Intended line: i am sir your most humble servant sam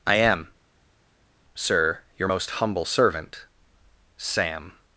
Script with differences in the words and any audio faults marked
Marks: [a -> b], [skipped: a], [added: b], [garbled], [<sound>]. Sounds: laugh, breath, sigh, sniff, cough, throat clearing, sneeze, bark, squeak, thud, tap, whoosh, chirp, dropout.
i am sir your most humble servant sam